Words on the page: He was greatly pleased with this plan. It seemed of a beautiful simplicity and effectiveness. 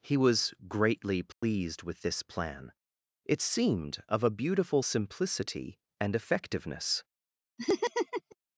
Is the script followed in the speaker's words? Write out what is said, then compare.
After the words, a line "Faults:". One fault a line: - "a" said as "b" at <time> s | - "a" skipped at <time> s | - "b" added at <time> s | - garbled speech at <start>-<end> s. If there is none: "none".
He was greatly pleased with this plan. It seemed of a beautiful simplicity and effectiveness.
Faults:
none